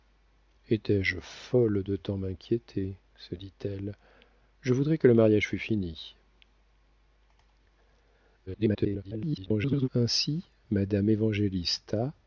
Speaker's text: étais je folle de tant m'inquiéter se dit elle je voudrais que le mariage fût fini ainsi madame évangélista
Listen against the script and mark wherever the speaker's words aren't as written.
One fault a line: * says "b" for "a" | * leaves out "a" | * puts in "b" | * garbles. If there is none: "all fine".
* garbles